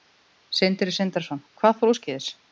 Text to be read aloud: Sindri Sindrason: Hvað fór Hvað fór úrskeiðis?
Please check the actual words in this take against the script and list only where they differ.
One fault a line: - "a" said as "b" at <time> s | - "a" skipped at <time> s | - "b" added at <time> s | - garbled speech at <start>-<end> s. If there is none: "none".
- "Hvað fór" skipped at 1.9 s